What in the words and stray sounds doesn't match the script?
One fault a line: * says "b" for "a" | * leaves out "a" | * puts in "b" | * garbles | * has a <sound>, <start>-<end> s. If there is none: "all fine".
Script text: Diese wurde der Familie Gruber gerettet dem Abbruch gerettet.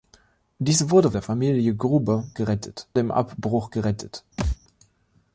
* has a thud, 4.4-4.6 s